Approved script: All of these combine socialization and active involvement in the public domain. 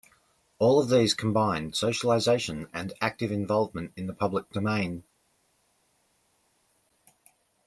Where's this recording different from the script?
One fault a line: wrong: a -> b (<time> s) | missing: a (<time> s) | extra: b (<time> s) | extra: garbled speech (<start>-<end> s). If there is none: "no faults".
no faults